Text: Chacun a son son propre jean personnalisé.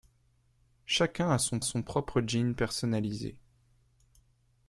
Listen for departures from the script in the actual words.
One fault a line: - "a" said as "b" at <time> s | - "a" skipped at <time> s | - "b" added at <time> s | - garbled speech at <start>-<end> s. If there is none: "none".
none